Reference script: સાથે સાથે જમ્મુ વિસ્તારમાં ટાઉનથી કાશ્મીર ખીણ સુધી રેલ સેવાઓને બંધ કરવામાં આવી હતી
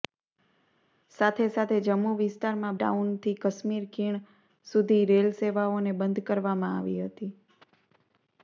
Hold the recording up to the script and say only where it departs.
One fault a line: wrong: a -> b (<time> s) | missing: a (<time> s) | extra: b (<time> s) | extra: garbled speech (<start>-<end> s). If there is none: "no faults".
no faults